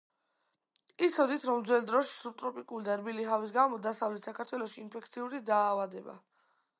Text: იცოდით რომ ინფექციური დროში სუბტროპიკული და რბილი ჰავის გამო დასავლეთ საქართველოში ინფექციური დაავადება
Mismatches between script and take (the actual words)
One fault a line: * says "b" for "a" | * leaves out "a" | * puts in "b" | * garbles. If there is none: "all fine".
* says "ძველ" for "ინფექციური"